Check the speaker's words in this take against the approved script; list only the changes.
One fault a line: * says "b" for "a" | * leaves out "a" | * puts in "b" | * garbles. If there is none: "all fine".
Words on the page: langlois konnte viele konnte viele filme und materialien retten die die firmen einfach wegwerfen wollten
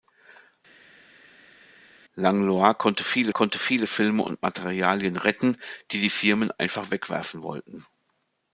all fine